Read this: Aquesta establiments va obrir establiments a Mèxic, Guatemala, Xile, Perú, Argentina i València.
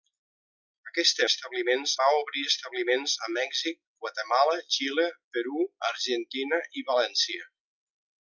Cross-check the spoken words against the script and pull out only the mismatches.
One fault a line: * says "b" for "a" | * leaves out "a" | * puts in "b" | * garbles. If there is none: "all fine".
all fine